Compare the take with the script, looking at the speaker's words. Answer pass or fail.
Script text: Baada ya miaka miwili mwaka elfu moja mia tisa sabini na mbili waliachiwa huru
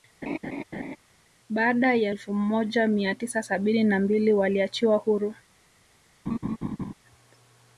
fail